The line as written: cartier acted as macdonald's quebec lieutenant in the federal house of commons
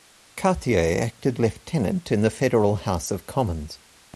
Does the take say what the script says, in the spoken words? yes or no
no